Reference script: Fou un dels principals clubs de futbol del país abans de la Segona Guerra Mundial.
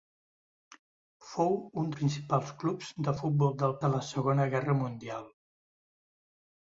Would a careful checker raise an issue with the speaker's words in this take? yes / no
yes